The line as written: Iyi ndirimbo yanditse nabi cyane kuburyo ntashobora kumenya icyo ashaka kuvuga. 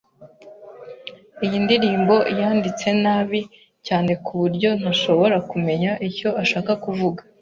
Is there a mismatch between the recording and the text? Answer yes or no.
no